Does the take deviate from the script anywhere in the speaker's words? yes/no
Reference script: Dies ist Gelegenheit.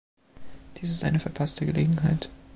yes